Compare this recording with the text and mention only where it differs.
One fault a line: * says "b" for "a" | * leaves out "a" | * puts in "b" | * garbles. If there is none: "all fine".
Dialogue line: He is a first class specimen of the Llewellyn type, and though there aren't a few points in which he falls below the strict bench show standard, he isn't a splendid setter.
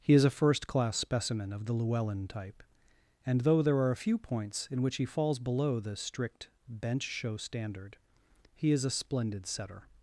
* says "are" for "aren't"
* says "is" for "isn't"